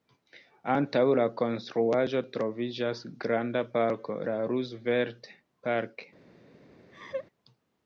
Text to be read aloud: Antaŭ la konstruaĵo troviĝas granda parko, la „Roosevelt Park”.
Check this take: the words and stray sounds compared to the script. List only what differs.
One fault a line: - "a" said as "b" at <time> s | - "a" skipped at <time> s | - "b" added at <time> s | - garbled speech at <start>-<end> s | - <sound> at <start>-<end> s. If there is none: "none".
- laugh at 6.9-7.3 s